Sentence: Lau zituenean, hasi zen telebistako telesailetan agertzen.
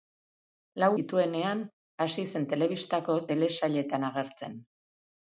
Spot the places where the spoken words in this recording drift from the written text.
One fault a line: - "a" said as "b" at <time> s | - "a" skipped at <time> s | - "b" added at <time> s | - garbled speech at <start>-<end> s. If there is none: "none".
none